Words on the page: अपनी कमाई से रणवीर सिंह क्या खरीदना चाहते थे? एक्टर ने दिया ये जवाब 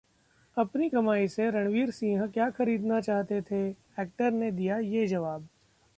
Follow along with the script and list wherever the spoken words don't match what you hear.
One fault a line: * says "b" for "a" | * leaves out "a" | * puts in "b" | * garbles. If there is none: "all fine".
all fine